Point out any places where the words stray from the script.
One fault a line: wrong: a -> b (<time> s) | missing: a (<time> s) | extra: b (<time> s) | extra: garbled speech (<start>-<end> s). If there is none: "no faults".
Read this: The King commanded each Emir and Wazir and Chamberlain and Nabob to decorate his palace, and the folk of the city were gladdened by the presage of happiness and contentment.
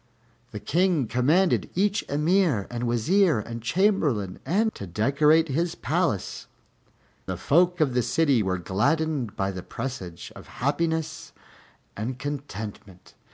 missing: Nabob (4.7 s)
missing: and (6.5 s)